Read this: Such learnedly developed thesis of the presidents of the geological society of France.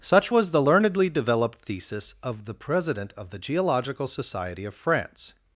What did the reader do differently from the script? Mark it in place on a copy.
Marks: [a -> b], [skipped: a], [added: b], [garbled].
Such [added: was the] learnedly developed thesis of the [presidents -> president] of the geological society of France.